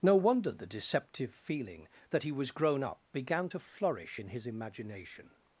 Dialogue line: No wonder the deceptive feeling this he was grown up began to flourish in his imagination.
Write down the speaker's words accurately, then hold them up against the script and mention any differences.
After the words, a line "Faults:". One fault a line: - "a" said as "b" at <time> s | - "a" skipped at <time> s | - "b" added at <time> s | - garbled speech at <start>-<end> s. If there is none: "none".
No wonder the deceptive feeling that he was grown up began to flourish in his imagination.
Faults:
- "this" said as "that" at 2.1 s